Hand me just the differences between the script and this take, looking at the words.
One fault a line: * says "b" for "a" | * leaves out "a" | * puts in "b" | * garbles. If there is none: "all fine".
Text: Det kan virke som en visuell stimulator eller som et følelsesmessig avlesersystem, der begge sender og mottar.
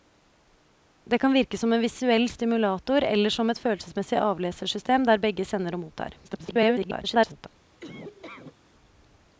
* garbles